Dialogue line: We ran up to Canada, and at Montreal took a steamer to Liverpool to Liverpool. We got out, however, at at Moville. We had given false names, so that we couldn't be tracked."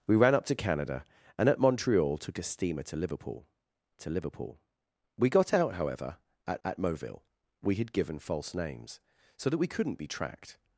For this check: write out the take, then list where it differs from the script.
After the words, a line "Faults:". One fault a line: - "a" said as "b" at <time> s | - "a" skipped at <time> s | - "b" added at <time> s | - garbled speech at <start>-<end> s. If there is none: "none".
We ran up to Canada, and at Montreal took a steamer to Liverpool to Liverpool. We got out, however, at at Moville. We had given false names, so that we couldn't be tracked."
Faults:
none